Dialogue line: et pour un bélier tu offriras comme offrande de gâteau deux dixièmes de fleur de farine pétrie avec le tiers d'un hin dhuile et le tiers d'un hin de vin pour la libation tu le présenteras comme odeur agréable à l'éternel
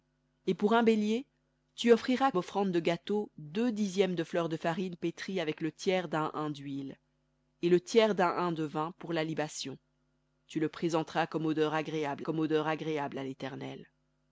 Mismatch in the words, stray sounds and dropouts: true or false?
true